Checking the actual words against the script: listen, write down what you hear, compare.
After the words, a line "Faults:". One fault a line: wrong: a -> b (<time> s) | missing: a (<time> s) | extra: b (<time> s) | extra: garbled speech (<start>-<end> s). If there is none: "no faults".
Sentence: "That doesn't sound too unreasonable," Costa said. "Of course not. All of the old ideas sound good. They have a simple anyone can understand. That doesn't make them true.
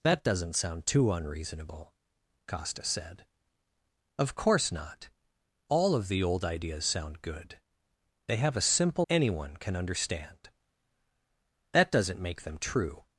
"That doesn't sound too unreasonable," Costa said. "Of course not. All of the old ideas sound good. They have a simple anyone can understand. That doesn't make them true.
Faults:
no faults